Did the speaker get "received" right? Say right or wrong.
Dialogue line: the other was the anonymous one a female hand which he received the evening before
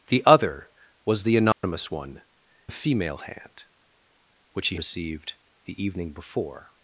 right